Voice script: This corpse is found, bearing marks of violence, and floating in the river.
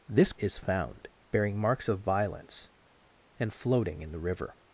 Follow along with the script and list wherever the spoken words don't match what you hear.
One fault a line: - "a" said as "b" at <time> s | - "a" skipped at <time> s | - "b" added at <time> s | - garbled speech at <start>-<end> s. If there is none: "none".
- "corpse" skipped at 0.3 s